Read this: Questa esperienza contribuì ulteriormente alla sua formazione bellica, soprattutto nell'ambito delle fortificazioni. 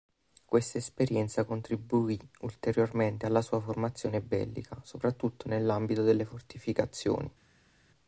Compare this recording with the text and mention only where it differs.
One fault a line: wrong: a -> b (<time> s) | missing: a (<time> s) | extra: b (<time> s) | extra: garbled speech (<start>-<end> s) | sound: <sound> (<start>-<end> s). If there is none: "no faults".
no faults